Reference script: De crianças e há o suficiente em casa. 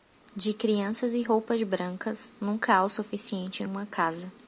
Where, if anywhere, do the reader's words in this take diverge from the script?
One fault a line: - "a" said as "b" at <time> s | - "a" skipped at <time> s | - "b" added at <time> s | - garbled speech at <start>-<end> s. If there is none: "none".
- "roupas brancas nunca" added at 1.2 s
- "uma" added at 3.6 s